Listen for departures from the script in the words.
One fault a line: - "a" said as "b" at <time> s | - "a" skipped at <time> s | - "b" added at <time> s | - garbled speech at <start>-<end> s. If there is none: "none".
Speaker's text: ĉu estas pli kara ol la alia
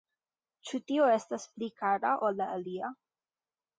- "tio" added at 0.9 s